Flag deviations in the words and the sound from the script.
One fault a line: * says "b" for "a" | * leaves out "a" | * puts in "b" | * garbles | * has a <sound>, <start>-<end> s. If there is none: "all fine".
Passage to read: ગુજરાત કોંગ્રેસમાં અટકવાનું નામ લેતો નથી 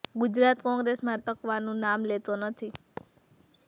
* has a thud, 3.0-3.3 s